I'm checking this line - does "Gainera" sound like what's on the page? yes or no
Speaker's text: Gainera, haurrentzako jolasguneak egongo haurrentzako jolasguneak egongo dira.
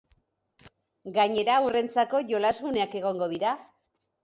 yes